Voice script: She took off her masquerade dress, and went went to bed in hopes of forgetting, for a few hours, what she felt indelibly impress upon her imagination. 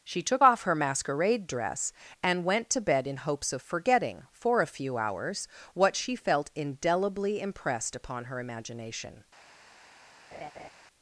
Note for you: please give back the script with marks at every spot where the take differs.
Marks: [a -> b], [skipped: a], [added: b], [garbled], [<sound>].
She took off her masquerade dress, and went [skipped: went] to bed in hopes of forgetting, for a few hours, what she felt indelibly [impress -> impressed] upon her imagination. [laugh]